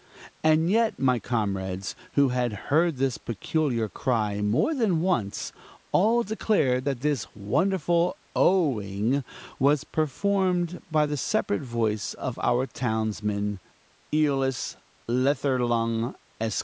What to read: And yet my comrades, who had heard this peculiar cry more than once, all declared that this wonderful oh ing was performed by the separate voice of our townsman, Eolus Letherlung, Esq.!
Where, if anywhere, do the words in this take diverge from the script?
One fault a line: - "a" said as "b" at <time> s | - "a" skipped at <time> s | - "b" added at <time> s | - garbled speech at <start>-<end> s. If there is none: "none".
none